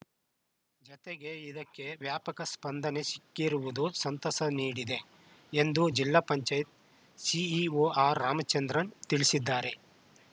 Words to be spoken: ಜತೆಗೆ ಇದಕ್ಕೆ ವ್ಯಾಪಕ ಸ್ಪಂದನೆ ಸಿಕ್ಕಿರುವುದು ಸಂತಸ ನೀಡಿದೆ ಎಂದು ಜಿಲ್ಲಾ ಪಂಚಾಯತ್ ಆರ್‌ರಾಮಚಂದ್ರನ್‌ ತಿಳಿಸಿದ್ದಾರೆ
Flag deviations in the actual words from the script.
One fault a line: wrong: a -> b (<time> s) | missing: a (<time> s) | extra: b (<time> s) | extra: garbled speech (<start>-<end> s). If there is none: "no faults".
extra: ಸಿಇಒ (7.2 s)